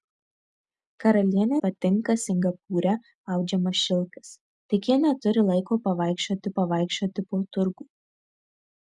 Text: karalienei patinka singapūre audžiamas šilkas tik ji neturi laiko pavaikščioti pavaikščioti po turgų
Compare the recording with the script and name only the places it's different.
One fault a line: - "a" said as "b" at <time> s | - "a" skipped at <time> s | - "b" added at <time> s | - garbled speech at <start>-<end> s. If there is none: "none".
none